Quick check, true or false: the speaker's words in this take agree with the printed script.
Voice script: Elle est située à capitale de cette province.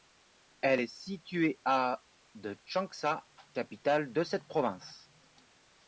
false